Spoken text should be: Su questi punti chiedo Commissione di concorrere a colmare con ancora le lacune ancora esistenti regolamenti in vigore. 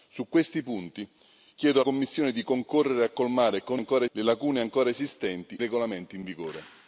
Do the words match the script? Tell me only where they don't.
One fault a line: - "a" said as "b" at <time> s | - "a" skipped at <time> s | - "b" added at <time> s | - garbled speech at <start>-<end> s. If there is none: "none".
none